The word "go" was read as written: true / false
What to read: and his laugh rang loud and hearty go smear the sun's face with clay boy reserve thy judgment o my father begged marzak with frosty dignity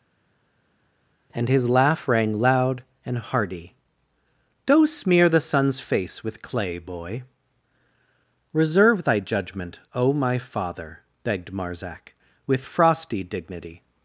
false